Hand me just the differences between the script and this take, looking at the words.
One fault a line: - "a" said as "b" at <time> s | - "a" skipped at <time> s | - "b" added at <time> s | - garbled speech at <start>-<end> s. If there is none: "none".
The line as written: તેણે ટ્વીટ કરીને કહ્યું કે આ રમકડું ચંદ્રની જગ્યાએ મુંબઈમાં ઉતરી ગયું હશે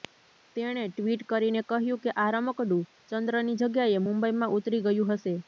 none